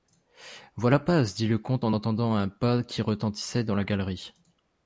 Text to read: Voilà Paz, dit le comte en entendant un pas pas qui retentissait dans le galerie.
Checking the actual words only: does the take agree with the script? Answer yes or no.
no